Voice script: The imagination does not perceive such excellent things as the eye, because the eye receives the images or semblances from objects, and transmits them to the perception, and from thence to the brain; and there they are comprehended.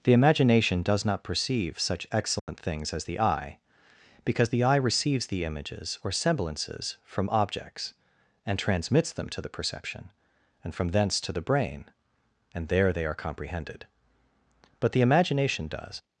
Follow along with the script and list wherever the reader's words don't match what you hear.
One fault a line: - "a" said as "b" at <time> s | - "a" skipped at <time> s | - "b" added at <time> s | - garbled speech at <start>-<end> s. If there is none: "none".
- "But the imagination does" added at 14.8 s